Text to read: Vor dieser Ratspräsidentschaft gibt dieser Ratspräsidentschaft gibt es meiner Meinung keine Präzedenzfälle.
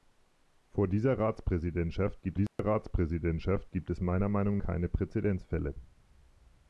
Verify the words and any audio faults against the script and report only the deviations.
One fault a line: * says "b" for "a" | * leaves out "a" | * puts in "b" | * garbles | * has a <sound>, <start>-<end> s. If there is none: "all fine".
* has a dropout, 2.5-2.6 s